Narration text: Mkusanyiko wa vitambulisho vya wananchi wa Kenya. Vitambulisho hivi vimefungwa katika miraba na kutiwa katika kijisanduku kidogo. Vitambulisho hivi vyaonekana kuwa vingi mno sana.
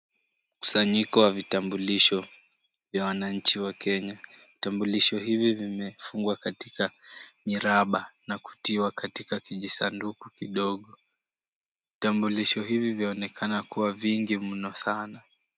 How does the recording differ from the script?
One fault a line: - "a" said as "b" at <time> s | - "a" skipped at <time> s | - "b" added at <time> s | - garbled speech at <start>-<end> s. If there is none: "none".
none